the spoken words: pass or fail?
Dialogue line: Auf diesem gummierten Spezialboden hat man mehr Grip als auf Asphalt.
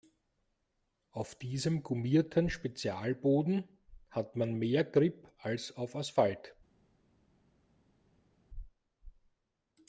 pass